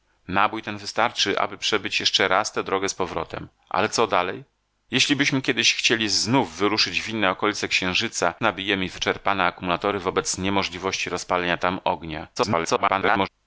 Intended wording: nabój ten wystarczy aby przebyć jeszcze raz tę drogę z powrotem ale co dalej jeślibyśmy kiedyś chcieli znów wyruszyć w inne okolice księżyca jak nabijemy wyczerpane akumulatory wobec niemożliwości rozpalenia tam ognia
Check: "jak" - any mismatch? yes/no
yes